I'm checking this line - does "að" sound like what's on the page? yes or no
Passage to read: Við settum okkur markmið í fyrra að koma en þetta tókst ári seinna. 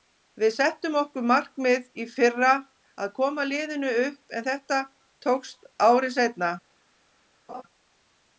yes